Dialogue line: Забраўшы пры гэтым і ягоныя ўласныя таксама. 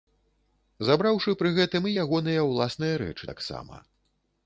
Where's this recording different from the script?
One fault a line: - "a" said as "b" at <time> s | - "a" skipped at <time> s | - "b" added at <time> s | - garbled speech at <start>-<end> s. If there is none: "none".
- "рэчы" added at 3.0 s